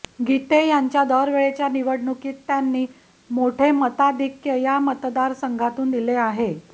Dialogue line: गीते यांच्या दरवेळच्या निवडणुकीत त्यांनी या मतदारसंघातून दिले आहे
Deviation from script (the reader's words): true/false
true